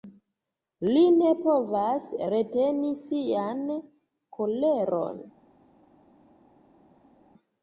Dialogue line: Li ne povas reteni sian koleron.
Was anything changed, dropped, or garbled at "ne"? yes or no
no